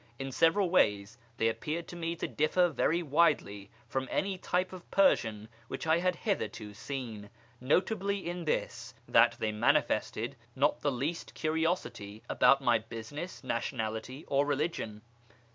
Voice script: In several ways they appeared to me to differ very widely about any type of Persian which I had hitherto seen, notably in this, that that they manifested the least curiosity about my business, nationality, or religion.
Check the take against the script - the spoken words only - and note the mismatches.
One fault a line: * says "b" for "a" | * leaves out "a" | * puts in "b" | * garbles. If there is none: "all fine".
* says "from" for "about"
* leaves out "that"
* puts in "not"